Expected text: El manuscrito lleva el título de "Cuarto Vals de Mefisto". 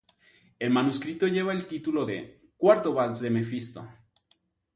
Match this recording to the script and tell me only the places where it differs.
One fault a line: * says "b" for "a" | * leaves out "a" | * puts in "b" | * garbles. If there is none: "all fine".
all fine